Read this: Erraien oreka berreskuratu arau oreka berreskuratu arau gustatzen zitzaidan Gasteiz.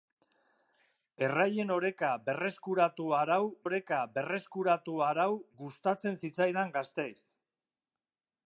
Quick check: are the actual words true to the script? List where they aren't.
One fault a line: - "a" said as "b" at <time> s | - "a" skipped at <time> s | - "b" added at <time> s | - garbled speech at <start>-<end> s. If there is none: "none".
none